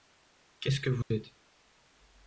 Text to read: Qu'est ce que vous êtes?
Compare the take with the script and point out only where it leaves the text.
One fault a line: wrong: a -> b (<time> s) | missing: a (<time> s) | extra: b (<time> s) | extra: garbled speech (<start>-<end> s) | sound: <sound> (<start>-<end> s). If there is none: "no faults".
sound: dropout (1.0-1.1 s)